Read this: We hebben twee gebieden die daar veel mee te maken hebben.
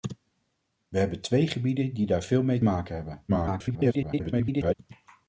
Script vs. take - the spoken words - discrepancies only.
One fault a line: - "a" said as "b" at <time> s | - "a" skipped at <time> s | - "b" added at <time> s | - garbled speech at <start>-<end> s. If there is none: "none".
- "te" skipped at 2.6 s
- garbled speech at 3.3-4.7 s